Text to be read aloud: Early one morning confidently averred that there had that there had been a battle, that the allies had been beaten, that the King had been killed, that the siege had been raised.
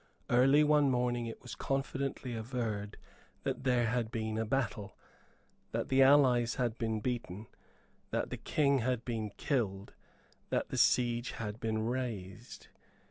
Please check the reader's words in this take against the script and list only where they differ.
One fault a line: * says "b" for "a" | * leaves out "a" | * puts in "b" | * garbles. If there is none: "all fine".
* puts in "it was"
* leaves out "that there had"